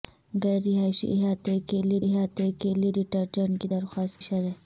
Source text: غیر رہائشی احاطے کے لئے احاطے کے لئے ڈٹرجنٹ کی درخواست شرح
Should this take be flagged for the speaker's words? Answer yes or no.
no